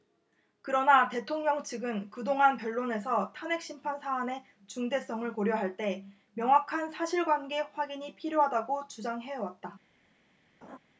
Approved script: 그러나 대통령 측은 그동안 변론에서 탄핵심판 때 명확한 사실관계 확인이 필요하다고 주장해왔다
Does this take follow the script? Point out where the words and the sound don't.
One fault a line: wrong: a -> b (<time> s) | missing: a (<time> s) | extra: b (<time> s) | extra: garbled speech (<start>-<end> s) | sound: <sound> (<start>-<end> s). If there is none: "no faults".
extra: 사안의 중대성을 고려할 (4.0 s)
sound: laugh (10.6-10.8 s)